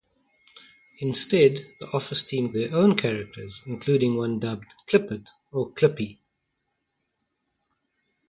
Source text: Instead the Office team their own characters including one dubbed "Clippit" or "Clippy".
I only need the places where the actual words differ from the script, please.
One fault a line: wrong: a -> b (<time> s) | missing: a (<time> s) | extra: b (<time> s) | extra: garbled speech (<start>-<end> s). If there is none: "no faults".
no faults